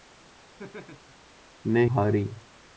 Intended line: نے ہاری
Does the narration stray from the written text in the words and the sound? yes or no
yes